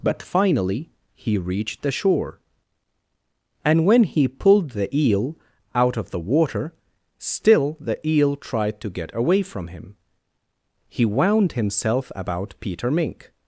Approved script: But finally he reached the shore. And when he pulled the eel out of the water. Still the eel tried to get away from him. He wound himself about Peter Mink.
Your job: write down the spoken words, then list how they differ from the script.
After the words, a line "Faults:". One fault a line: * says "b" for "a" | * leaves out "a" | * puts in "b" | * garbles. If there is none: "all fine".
But finally he reached the shore. And when he pulled the eel out of the water. Still the eel tried to get away from him. He wound himself about Peter Mink.
Faults:
all fine